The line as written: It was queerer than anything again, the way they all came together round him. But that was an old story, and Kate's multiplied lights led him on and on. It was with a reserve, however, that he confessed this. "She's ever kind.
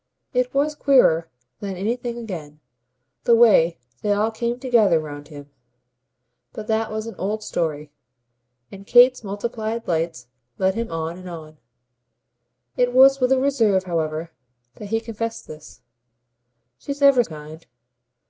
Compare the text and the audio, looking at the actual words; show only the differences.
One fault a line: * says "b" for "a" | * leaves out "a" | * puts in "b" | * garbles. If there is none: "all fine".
all fine